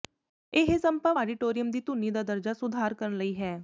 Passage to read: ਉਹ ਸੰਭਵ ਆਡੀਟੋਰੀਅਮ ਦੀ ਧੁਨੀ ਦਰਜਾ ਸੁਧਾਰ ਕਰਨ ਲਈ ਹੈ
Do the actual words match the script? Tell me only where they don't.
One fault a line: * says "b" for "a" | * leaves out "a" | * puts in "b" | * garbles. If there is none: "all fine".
* says "ਇਹ" for "ਉਹ"
* puts in "ਦਾ"